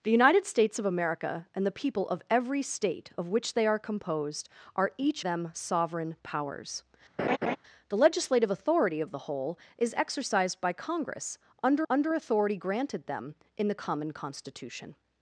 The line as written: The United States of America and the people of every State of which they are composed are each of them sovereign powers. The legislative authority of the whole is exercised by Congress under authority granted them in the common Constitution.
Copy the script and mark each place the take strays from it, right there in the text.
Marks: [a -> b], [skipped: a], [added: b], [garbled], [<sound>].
The United States of America and the people of every State of which they are composed are each [skipped: of] them sovereign powers. [laugh] The legislative authority of the whole is exercised by Congress under [added: under] authority granted them in the common Constitution.